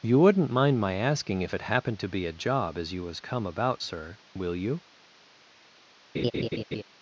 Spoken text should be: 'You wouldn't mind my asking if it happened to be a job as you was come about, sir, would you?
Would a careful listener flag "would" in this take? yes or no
yes